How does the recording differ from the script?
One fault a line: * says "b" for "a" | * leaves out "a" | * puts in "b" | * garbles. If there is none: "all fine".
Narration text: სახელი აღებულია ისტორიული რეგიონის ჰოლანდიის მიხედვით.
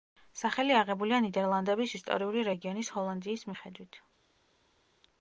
* puts in "ნიდერლანდების"